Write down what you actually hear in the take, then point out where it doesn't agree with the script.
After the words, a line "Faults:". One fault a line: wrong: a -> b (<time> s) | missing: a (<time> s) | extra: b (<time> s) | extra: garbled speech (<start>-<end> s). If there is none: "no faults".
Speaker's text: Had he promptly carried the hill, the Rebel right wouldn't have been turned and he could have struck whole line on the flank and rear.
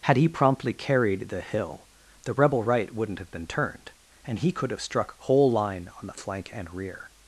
Had he promptly carried the hill, the Rebel right wouldn't have been turned and he could have struck whole line on the flank and rear.
Faults:
no faults